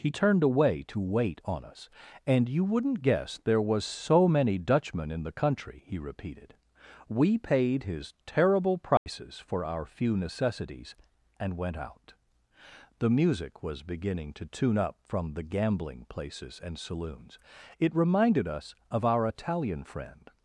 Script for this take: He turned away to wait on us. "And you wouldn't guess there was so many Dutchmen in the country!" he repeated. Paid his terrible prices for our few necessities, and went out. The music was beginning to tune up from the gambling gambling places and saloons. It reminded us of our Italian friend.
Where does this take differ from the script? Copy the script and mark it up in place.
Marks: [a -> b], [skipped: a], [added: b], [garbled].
He turned away to wait on us. "And you wouldn't guess there was so many Dutchmen in the country!" he repeated. [added: We] Paid his terrible prices for our few necessities, and went out. The music was beginning to tune up from the gambling [skipped: gambling] places and saloons. It reminded us of our Italian friend.